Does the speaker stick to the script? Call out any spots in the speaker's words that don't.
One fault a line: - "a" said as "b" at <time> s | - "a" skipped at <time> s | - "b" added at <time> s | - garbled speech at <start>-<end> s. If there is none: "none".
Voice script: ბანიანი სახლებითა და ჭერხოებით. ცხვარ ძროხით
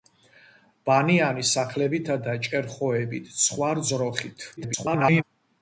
- garbled speech at 4.6-5.2 s